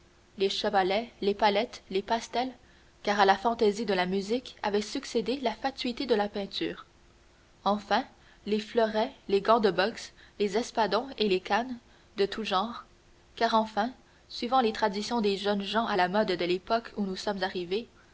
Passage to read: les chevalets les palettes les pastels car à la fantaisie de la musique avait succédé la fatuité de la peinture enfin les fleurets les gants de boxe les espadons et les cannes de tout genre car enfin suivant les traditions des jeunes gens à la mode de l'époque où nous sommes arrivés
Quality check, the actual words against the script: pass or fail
pass